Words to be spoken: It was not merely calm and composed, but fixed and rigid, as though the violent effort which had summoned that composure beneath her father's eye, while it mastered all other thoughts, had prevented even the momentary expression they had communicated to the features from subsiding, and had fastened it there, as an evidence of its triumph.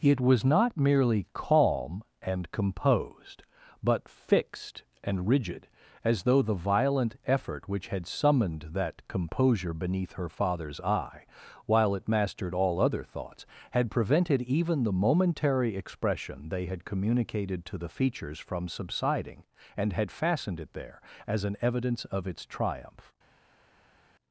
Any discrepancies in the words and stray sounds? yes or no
no